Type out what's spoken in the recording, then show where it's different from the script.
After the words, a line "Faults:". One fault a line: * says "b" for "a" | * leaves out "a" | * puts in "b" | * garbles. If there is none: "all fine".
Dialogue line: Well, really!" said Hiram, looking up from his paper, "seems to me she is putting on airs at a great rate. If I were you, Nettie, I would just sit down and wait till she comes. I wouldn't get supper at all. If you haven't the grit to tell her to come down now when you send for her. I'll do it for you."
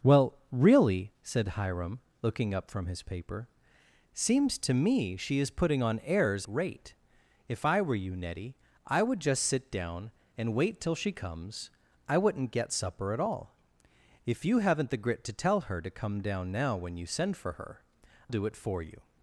Well, really!" said Hiram, looking up from his paper, "seems to me she is putting on airs rate. If I were you, Nettie, I would just sit down and wait till she comes. I wouldn't get supper at all. If you haven't the grit to tell her to come down now when you send for her. Do it for you."
Faults:
* leaves out "at a great"
* leaves out "I'll"